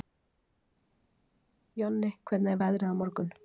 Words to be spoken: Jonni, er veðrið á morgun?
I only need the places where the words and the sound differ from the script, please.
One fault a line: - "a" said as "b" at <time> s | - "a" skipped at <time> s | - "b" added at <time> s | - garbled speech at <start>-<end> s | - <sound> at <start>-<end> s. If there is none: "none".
- "hvernig" added at 2.3 s